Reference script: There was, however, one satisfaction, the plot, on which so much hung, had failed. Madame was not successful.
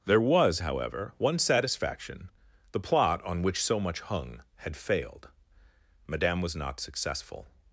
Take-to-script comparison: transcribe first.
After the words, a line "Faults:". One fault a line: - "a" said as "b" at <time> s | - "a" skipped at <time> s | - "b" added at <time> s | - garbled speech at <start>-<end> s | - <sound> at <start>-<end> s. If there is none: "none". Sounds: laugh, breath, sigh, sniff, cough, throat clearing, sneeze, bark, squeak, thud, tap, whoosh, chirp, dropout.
There was, however, one satisfaction, the plot, on which so much hung, had failed. Madame was not successful.
Faults:
none